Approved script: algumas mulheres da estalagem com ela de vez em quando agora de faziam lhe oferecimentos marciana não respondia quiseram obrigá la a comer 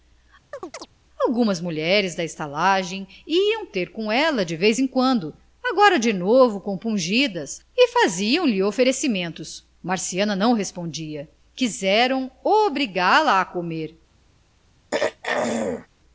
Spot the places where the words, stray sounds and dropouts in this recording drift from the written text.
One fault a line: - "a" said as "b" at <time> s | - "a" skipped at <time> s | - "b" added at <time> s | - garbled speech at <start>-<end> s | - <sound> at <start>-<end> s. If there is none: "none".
- chirp at 0.5-0.9 s
- "iam ter" added at 3.3 s
- "novo compungidas e" added at 6.1 s
- throat clearing at 14.9-15.9 s